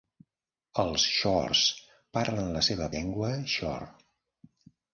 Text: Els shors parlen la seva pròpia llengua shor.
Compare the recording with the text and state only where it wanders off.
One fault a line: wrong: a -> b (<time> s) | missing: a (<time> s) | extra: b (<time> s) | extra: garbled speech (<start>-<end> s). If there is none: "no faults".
missing: pròpia (2.9 s)